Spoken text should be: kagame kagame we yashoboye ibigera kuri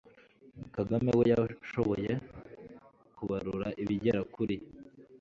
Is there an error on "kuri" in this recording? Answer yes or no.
no